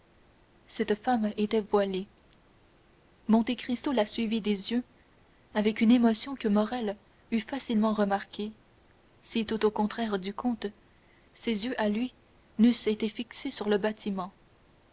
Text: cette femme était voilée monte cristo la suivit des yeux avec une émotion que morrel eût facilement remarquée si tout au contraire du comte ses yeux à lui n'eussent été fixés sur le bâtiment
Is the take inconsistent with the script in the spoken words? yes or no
no